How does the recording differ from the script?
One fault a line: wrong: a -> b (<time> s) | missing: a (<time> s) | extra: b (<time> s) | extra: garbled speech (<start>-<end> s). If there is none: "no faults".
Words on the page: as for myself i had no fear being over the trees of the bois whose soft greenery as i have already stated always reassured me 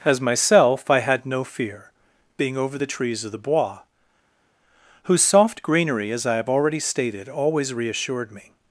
missing: for (0.2 s)